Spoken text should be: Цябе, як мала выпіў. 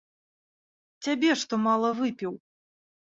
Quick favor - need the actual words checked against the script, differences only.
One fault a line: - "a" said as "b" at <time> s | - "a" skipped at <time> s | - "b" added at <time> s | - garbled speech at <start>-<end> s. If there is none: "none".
- "як" said as "што" at 1.4 s